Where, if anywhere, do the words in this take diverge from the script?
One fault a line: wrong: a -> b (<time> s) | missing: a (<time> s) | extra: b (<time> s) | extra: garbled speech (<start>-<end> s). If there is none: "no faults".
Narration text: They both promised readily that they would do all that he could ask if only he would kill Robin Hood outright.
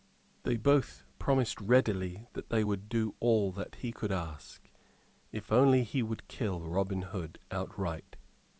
no faults